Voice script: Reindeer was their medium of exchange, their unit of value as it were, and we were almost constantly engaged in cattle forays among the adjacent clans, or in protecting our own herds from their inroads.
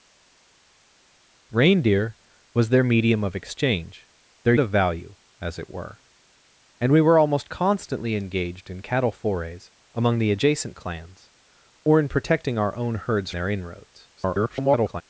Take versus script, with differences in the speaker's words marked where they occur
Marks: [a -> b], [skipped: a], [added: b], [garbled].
Reindeer was their medium of exchange, their [skipped: unit] of value as it were, and we were almost constantly engaged in cattle forays among the adjacent clans, or in protecting our own herds [skipped: from] their inroads. [garbled]